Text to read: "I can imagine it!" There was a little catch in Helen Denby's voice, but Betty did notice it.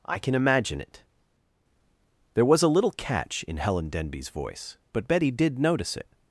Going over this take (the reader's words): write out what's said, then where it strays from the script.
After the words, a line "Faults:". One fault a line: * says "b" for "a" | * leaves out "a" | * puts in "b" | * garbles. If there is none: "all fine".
"I can imagine it!" There was a little catch in Helen Denby's voice, but Betty did notice it.
Faults:
all fine